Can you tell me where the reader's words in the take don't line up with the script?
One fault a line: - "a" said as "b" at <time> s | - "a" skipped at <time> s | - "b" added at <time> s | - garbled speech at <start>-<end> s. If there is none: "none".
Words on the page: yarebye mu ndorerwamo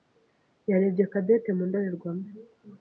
- "cadette" added at 1.1 s